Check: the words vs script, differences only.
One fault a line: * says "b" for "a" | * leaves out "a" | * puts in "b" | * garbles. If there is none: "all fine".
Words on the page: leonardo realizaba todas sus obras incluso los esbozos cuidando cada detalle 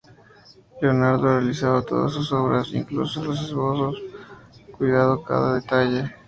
all fine